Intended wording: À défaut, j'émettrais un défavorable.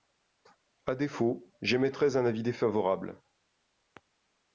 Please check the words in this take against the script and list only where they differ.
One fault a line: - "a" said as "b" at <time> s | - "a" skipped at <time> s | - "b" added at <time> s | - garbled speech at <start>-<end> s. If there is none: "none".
- "avis" added at 2.2 s